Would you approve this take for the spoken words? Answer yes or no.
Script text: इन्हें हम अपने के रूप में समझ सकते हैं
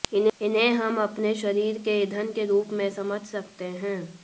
no